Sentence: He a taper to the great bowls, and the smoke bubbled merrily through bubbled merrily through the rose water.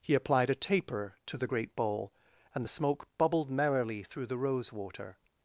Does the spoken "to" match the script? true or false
true